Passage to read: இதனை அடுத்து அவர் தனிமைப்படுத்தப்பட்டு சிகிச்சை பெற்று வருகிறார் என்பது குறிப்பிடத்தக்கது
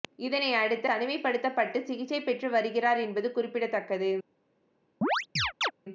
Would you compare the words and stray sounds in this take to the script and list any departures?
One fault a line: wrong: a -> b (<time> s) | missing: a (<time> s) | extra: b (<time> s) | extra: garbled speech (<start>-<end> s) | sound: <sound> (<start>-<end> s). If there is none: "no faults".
missing: அவர் (0.9 s)
sound: chirp (5.0-5.7 s)